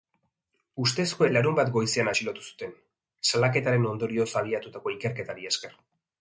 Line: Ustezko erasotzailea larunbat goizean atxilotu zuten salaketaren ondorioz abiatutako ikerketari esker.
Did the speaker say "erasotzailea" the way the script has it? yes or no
no